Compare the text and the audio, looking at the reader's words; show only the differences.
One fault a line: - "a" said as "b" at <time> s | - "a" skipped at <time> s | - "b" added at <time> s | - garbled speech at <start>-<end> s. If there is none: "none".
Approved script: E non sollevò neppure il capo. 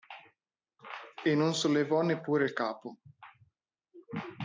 none